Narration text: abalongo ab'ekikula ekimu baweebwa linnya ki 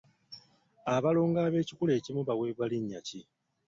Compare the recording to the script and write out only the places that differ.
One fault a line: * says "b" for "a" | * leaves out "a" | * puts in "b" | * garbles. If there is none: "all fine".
all fine